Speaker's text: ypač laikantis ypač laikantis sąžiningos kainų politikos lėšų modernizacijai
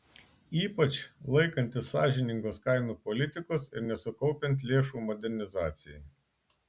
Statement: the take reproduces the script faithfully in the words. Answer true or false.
false